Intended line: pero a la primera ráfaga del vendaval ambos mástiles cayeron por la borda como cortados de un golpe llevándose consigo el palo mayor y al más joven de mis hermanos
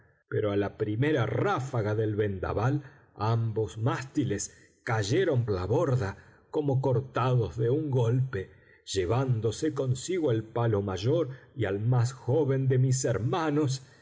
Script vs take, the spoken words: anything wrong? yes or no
yes